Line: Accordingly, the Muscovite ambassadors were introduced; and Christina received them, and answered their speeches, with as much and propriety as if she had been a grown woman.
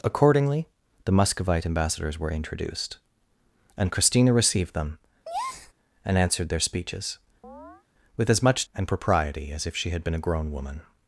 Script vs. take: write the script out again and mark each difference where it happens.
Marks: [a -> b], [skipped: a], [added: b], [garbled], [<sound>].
Accordingly, the Muscovite ambassadors were introduced; and Christina received them, [breath] and answered their speeches, [chirp] with as much and propriety as if she had been a grown woman.